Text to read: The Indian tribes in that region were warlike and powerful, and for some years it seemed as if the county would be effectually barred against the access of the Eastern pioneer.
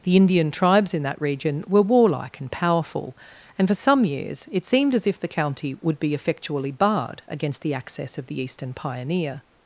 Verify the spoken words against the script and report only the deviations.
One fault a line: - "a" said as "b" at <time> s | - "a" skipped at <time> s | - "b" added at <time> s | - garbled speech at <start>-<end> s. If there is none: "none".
none